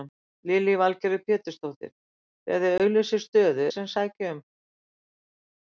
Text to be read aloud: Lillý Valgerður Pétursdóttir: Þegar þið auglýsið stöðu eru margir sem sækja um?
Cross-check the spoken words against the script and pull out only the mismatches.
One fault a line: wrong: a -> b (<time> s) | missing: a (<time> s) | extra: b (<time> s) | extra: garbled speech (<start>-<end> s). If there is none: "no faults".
missing: eru margir (3.7 s)